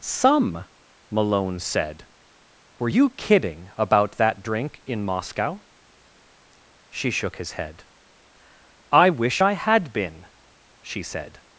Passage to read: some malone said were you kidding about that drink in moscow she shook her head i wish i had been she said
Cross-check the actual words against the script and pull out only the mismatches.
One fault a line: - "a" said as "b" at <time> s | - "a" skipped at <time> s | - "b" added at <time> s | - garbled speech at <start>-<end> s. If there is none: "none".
- "her" said as "his" at 7.3 s